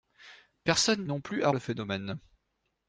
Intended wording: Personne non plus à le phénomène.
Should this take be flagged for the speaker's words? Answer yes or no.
no